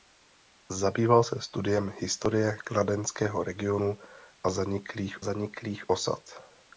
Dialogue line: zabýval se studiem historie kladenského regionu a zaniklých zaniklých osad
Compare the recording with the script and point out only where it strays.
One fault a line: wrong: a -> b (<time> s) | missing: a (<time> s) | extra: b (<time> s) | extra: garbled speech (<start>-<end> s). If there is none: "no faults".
no faults